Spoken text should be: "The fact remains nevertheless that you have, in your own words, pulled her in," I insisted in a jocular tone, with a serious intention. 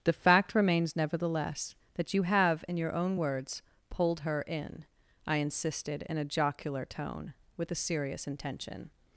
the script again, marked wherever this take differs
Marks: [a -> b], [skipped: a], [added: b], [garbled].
"The fact remains nevertheless that you have, in your own words, pulled her in," I insisted in a jocular tone, with a serious intention.